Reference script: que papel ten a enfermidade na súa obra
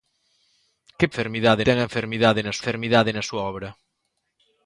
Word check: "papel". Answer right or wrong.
wrong